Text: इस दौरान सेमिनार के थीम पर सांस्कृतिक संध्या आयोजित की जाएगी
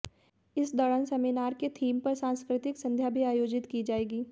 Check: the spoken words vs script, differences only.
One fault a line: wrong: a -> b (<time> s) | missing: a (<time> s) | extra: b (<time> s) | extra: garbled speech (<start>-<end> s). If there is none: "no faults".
extra: भी (3.1 s)